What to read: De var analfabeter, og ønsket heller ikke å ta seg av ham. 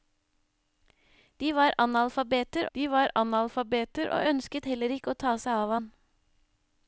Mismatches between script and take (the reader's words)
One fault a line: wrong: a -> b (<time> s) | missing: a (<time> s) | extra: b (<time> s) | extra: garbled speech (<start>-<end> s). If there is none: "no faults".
extra: de var analfabeter (2.7 s)